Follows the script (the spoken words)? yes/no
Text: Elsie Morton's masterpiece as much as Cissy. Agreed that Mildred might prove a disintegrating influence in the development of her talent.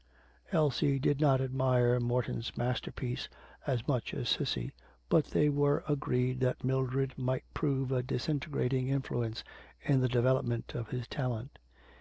no